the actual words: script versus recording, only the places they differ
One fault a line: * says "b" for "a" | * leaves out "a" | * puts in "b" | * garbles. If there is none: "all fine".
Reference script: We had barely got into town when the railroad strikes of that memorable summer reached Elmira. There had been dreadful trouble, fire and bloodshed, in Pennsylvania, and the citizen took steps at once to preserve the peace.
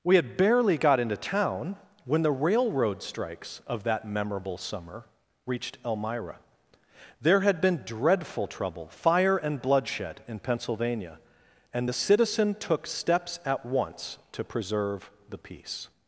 all fine